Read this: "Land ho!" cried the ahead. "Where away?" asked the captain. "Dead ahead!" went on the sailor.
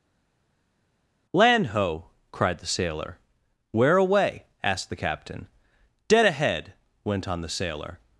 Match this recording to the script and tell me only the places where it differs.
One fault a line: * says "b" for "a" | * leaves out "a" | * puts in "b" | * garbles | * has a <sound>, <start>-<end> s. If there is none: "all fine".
* says "sailor" for "ahead"